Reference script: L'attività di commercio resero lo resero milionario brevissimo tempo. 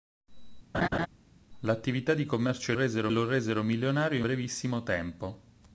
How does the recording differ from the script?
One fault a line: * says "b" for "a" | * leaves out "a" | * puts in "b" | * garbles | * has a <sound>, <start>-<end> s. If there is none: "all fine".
* has a laugh, 0.7-1.1 s